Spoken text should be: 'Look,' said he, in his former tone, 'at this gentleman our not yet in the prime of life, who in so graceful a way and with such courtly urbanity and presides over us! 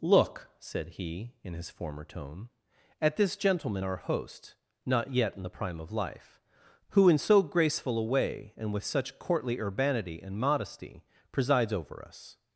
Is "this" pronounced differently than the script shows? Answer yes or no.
no